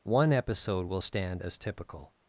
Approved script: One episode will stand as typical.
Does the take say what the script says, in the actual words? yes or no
yes